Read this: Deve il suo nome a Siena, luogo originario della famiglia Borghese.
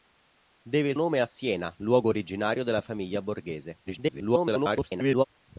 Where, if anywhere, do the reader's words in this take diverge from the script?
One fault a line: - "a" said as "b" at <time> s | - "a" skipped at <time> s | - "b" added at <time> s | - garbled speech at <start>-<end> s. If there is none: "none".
- "suo" skipped at 1.0 s
- garbled speech at 3.9-5.2 s